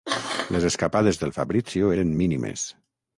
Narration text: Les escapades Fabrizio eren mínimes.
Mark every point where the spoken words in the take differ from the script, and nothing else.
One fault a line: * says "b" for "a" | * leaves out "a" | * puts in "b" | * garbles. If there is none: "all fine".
* puts in "del"